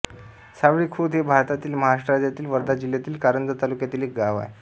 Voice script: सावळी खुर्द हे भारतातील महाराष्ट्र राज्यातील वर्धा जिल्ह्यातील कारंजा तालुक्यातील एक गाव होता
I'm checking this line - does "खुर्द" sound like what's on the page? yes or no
yes